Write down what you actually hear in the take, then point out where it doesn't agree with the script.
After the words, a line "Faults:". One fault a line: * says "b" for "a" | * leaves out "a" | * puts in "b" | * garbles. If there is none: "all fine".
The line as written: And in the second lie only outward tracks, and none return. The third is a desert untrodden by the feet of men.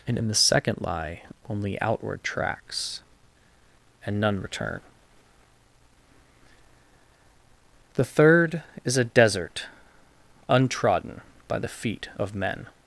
And in the second lie only outward tracks, and none return. The third is a desert untrodden by the feet of men.
Faults:
all fine